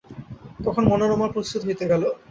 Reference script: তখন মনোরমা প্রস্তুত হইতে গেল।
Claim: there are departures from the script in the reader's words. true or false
false